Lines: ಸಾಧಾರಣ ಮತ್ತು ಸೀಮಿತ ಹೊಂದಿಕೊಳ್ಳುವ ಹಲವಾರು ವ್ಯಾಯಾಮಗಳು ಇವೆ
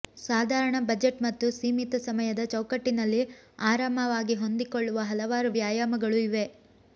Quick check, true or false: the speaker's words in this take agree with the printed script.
false